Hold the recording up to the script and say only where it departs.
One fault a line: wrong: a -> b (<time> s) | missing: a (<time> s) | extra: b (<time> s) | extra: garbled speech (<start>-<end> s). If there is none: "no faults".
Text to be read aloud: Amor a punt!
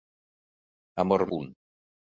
no faults